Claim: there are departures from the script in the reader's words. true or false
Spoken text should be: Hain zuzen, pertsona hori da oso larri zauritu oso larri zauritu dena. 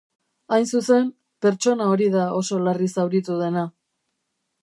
true